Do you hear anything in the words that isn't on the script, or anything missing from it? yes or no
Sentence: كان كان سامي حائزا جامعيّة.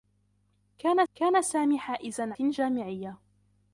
no